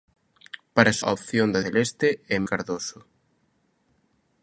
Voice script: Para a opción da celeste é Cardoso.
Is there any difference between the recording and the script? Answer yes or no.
no